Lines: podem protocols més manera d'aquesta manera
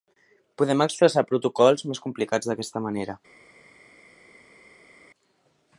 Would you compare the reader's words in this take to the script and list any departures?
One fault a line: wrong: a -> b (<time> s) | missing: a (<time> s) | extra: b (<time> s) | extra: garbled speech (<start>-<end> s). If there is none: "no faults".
extra: expressar (0.8 s)
wrong: manera -> complicats (2.1 s)